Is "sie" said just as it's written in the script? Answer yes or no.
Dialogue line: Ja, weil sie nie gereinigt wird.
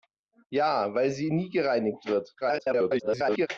yes